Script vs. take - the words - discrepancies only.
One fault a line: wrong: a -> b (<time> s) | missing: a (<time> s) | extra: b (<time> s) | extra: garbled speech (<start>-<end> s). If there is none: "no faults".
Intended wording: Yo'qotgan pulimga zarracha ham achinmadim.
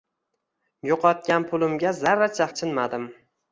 missing: ham (2.5 s)